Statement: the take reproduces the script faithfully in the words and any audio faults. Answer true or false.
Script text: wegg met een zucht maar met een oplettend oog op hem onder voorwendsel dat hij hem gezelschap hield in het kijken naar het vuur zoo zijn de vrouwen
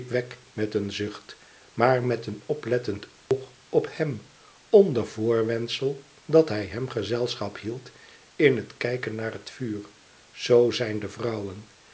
false